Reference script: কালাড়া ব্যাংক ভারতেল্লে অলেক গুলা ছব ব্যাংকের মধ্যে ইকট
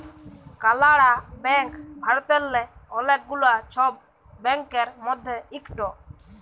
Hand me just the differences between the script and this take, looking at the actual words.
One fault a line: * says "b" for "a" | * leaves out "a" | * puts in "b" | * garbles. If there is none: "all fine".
all fine